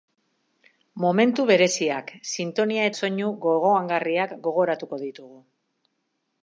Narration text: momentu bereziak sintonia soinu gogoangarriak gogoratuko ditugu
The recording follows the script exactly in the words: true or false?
true